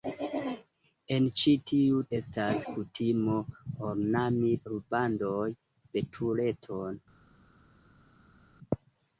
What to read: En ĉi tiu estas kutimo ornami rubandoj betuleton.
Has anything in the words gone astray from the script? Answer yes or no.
no